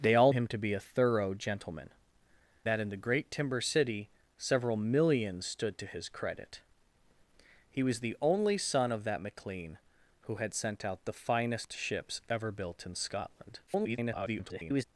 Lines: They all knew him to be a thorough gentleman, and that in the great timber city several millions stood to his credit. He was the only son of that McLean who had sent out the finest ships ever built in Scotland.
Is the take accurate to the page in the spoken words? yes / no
no